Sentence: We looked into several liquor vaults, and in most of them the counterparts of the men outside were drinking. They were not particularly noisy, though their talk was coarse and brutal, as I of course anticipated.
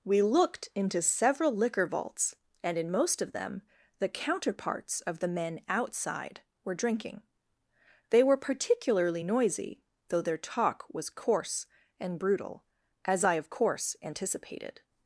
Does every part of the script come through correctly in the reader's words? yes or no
no